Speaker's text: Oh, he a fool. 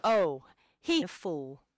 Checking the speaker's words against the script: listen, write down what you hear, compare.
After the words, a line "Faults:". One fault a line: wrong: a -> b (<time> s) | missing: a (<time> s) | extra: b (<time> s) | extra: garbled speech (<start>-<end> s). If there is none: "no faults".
Oh, he a fool.
Faults:
no faults